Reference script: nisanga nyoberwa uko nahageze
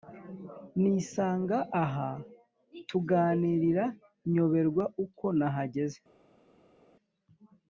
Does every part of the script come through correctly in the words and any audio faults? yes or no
no